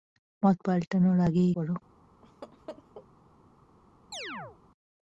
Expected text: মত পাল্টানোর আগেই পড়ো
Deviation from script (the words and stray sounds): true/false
true